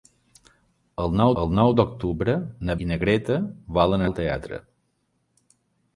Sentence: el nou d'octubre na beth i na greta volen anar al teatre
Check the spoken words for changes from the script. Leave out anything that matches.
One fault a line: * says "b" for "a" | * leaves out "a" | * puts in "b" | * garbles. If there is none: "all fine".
* puts in "el nou"
* leaves out "beth"
* leaves out "anar"